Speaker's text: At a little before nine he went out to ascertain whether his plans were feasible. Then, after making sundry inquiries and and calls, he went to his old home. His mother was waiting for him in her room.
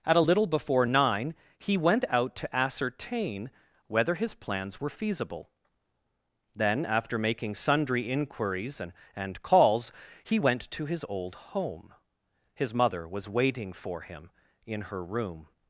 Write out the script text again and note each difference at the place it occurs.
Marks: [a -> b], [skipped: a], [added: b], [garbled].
At a little before nine he went out to ascertain whether his plans were feasible. Then, after making sundry inquiries and and calls, he went to his old home. His mother was waiting for him in her room.